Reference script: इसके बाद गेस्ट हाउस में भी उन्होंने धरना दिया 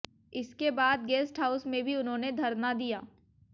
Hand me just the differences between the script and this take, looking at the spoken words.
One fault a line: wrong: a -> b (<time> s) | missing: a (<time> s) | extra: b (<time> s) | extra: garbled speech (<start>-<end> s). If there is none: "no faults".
no faults